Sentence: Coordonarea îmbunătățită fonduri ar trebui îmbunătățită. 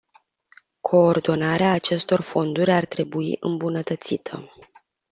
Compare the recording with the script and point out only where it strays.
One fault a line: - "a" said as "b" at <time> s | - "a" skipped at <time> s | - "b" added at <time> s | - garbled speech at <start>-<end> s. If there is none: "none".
- "îmbunătățită" said as "acestor" at 1.7 s